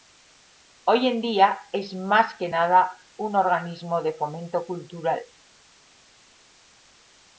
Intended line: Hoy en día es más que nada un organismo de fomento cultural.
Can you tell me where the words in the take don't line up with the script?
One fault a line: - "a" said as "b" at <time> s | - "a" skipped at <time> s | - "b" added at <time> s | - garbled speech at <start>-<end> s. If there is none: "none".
none